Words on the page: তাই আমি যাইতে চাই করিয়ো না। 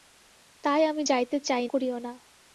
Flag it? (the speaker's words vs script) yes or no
no